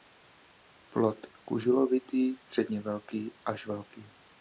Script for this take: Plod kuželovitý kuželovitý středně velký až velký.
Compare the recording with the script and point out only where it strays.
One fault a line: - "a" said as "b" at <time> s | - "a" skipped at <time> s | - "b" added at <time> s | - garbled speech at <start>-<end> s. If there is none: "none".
- "kuželovitý" skipped at 2.4 s